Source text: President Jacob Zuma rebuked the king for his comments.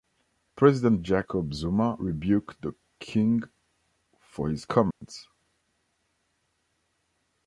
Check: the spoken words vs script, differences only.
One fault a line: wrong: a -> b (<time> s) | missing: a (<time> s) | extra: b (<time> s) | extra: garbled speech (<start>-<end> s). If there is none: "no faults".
no faults